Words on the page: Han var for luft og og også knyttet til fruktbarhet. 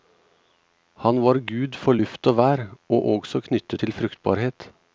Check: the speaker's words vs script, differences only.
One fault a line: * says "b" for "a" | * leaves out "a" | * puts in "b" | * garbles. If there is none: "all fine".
* puts in "gud"
* puts in "vær"